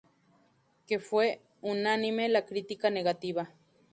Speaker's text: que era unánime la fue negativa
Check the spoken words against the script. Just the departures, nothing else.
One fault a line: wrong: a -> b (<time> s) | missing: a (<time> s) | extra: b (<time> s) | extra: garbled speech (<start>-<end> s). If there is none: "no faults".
wrong: era -> fue (1.0 s)
wrong: fue -> crítica (2.5 s)